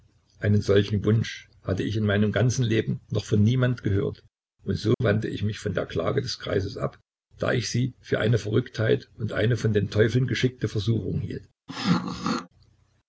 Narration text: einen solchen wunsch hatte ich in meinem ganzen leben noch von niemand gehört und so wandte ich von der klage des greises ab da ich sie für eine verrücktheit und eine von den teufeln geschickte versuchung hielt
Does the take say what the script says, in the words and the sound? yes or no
no